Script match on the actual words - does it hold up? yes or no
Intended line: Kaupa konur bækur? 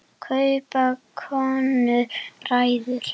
yes